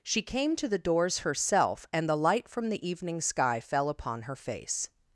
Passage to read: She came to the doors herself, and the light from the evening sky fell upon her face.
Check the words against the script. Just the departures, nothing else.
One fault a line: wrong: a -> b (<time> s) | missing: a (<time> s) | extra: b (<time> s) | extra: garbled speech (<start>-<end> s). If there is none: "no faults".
no faults